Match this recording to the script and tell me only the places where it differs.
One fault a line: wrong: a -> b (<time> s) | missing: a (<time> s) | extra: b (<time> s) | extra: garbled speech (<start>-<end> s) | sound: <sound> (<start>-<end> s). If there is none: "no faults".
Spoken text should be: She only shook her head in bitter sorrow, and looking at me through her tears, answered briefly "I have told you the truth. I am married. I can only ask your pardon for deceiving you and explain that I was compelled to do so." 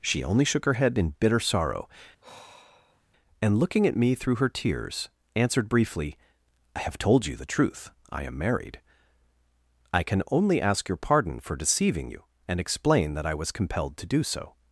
sound: sigh (2.2-3.1 s)